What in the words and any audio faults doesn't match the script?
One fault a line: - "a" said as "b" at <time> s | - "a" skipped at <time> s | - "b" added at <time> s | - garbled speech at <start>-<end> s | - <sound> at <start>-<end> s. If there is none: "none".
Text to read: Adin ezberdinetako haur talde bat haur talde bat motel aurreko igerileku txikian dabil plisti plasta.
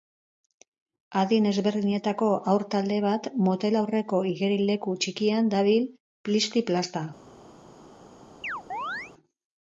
- "haur talde bat" skipped at 3.3 s
- chirp at 8.4-9.1 s